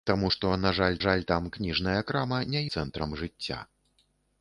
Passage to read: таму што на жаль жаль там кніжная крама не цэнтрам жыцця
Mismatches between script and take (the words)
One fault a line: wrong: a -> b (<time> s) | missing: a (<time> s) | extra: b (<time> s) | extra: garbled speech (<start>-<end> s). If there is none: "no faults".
no faults